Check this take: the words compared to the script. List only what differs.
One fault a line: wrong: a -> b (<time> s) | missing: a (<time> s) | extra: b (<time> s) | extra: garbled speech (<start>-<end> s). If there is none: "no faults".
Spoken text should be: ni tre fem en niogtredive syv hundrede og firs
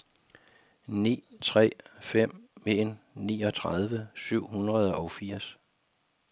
no faults